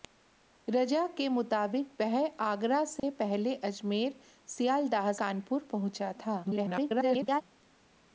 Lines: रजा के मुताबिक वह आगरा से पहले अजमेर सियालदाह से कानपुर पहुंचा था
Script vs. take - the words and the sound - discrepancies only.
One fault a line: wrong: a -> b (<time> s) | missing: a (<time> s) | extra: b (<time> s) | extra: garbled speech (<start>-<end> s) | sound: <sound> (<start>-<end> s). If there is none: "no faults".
sound: dropout (3.0-3.0 s)
missing: से (5.1 s)
extra: garbled speech (6.4-7.4 s)